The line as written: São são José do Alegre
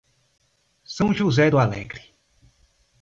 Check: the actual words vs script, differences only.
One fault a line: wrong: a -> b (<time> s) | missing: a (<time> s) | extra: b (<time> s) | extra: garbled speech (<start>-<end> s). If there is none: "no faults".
missing: são (1.1 s)